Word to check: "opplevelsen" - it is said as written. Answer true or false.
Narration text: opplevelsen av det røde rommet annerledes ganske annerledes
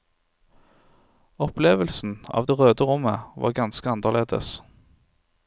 true